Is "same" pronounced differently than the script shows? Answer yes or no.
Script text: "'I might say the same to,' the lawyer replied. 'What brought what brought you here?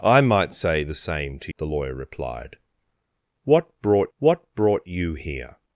no